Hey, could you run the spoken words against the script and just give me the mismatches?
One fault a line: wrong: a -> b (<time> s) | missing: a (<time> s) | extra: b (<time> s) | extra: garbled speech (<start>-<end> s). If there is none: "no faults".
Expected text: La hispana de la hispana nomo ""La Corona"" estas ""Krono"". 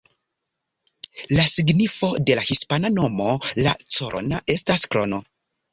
wrong: hispana -> signifo (1.5 s)